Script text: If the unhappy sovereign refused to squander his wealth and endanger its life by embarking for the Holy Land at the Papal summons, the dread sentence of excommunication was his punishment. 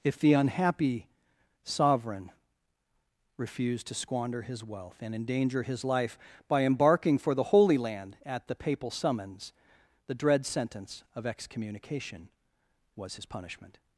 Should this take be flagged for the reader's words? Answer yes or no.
yes